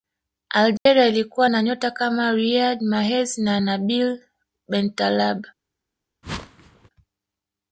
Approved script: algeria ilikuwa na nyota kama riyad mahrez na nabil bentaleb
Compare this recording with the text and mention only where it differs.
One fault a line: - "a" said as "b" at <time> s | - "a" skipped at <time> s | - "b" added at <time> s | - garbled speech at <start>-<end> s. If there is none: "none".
none